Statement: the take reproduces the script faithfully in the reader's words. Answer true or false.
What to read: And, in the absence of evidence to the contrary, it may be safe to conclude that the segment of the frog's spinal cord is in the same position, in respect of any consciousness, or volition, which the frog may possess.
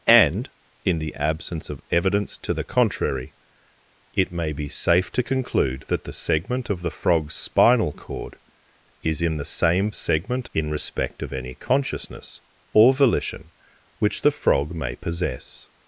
false